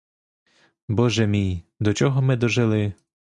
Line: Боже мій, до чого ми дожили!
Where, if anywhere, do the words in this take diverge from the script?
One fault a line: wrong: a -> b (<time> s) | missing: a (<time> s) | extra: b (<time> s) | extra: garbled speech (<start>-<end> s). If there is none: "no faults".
no faults